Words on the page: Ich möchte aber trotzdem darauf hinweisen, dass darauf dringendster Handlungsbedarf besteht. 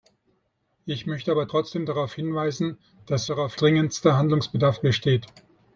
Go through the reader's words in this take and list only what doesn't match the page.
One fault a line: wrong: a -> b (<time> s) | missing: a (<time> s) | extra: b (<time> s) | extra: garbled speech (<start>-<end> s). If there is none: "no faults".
no faults